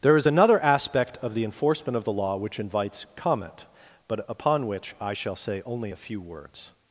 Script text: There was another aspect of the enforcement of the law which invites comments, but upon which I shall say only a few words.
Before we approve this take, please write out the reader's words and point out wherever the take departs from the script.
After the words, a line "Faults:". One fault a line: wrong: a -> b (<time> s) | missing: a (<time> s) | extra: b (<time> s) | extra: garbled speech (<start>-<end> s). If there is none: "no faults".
There is another aspect of the enforcement of the law which invites comment, but upon which I shall say only a few words.
Faults:
wrong: was -> is (0.2 s)
wrong: comments -> comment (3.2 s)